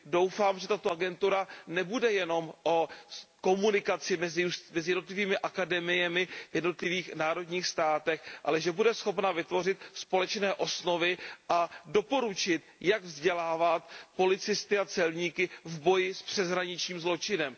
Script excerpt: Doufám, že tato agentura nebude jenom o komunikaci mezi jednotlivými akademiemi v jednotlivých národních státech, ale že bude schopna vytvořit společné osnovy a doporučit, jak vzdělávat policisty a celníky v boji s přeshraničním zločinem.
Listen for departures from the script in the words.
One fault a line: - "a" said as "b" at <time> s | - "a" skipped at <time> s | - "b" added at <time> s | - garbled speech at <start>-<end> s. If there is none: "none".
none